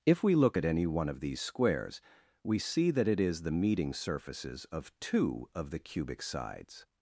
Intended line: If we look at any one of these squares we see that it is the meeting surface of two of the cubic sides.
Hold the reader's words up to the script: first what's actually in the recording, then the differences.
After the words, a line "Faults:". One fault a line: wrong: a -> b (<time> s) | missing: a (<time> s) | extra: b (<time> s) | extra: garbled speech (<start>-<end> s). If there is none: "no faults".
If we look at any one of these squares we see that it is the meeting surfaces of two of the cubic sides.
Faults:
wrong: surface -> surfaces (3.9 s)